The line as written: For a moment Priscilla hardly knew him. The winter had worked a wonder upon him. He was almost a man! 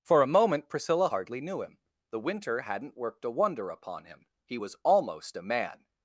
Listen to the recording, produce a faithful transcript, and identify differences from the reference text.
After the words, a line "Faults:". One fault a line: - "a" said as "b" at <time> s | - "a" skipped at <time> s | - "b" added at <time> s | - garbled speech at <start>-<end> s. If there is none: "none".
For a moment Priscilla hardly knew him. The winter hadn't worked a wonder upon him. He was almost a man!
Faults:
- "had" said as "hadn't" at 2.6 s